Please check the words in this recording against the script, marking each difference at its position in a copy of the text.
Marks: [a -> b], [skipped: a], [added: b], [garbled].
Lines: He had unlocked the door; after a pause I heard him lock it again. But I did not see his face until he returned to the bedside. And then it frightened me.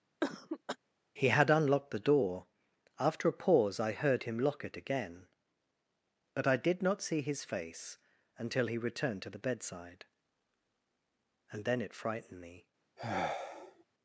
He had unlocked the door; after a pause I heard him lock it again. But I did not see his face until he returned to the bedside. And then it frightened me.